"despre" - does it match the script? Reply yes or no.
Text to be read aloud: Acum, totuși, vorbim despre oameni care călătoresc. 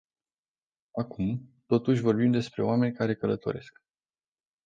yes